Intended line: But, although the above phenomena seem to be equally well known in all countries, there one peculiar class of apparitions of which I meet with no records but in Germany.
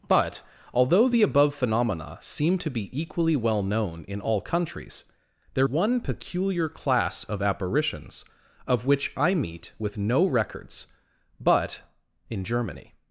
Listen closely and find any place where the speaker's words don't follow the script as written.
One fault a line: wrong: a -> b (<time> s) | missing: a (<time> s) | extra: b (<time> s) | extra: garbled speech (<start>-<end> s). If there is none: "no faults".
no faults